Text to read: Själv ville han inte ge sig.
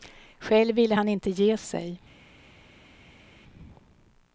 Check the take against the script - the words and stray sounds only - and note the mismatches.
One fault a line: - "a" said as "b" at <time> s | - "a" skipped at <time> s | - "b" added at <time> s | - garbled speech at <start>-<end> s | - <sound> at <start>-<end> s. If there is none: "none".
none